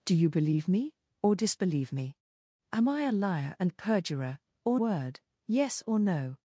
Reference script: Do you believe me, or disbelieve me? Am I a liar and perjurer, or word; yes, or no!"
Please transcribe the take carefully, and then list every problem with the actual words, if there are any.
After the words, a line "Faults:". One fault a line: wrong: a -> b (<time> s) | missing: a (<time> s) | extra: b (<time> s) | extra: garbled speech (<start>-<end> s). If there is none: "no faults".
Do you believe me, or disbelieve me? Am I a liar and perjurer, or word; yes, or no!"
Faults:
no faults